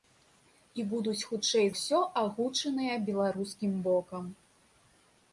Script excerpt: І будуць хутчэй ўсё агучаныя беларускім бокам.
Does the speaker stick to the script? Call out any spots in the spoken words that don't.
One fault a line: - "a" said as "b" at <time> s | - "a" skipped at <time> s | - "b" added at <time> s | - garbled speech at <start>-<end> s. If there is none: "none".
none